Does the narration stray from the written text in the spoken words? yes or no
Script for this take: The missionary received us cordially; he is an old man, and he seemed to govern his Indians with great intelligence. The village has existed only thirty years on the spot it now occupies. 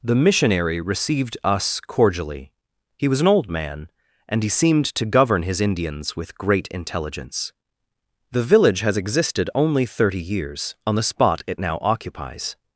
yes